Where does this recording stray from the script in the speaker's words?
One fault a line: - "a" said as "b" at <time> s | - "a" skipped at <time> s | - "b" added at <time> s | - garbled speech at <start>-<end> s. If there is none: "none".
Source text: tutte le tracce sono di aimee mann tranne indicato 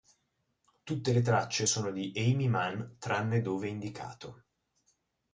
- "dove" added at 3.4 s